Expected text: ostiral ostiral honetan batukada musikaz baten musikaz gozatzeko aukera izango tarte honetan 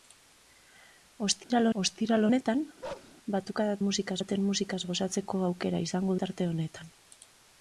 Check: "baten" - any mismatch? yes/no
no